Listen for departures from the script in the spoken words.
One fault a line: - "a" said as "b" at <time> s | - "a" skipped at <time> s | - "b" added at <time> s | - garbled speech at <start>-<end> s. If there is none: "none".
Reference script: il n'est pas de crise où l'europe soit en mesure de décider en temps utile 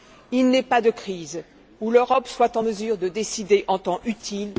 none